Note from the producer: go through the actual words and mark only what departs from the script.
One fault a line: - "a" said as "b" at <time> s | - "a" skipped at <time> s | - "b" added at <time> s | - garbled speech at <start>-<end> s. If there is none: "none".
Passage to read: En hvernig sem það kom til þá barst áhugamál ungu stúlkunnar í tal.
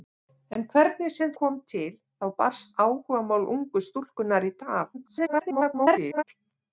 - "það" skipped at 1.3 s
- garbled speech at 4.9-6.2 s